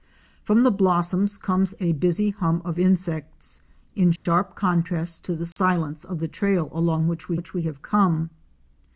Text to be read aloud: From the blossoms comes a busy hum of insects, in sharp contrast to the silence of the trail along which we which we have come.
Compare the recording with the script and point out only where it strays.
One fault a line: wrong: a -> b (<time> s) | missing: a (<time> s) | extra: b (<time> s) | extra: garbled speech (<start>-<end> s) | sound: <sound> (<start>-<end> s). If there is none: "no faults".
sound: dropout (4.2-4.3 s)
sound: dropout (5.5-5.6 s)